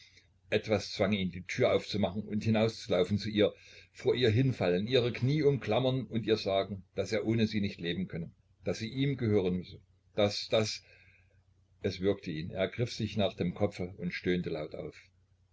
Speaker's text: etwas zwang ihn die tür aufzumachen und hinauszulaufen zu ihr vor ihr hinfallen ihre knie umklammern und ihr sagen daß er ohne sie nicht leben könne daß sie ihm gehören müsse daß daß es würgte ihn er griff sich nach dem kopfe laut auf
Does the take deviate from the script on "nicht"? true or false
false